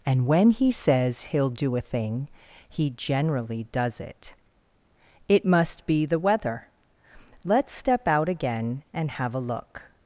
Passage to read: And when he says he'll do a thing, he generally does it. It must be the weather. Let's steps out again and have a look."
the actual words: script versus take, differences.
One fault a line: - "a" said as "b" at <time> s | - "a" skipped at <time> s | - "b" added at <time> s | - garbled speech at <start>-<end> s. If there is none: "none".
- "steps" said as "step" at 7.7 s